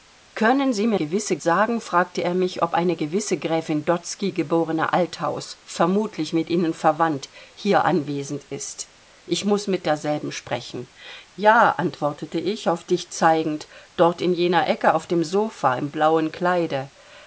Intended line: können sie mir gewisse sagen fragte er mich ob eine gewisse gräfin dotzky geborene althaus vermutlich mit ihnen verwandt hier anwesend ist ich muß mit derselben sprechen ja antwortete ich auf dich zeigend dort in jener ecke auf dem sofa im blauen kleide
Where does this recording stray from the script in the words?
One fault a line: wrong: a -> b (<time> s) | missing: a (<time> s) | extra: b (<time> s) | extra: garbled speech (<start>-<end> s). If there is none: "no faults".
no faults